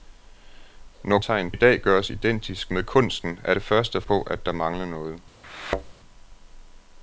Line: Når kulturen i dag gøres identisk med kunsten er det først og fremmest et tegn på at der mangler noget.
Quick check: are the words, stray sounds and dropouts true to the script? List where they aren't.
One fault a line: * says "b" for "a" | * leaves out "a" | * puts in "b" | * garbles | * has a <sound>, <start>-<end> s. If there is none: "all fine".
* says "tegn" for "kulturen"
* leaves out "fremmest et tegn"
* has a thud, 5.4-5.9 s